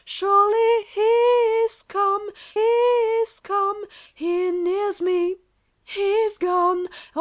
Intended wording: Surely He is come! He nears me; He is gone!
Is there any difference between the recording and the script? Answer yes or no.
yes